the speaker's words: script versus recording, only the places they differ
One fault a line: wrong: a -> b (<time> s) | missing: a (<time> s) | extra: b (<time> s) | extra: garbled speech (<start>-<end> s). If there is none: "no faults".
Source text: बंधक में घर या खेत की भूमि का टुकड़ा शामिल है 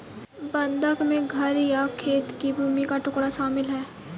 no faults